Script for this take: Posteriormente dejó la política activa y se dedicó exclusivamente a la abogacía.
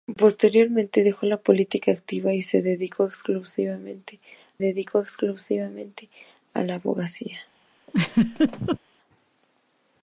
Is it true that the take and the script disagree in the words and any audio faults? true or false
true